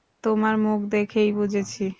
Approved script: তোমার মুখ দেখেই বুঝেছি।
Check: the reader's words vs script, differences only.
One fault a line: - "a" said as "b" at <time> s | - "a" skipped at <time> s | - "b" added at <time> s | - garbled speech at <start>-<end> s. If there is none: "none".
none